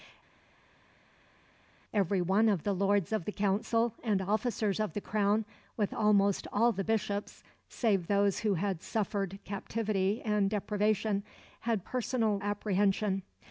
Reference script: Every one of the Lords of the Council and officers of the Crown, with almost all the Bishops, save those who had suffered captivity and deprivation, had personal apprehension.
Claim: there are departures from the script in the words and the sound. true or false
false